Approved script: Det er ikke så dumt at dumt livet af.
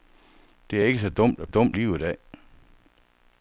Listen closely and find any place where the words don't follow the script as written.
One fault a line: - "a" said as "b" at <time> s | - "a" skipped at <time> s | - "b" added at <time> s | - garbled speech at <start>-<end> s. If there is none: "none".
none